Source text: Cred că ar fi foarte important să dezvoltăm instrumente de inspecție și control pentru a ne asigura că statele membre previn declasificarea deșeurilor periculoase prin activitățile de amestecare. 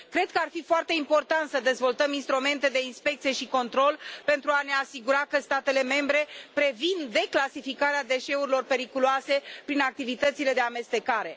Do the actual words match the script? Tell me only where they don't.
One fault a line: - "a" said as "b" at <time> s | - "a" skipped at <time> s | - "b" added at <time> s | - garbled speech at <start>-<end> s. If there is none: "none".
none